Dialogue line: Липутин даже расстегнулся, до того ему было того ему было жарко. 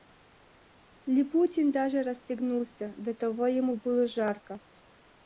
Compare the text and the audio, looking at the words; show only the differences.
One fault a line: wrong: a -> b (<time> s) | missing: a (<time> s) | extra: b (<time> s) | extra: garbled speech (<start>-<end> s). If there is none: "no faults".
missing: того ему было (4.1 s)